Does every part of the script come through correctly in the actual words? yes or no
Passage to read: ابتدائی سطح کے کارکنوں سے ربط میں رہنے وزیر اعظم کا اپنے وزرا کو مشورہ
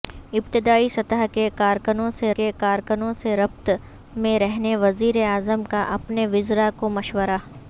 no